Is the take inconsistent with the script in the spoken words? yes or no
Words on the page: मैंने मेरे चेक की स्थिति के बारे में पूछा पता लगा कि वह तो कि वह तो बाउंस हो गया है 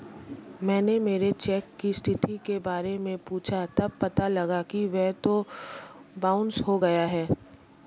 yes